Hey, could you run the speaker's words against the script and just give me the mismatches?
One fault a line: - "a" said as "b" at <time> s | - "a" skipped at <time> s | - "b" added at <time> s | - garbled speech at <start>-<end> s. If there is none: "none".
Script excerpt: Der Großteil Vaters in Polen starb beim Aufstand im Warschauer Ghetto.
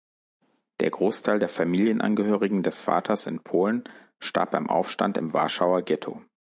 - "der Familienangehörigen des" added at 1.4 s